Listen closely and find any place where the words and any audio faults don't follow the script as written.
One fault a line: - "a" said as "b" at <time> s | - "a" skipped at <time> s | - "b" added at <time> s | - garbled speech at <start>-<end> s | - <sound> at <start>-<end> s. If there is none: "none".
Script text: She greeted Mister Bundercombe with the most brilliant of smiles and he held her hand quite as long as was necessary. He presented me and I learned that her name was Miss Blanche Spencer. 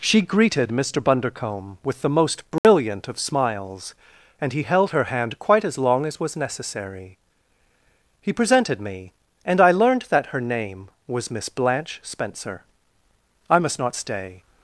- dropout at 2.6-2.6 s
- "I must not stay" added at 13.5 s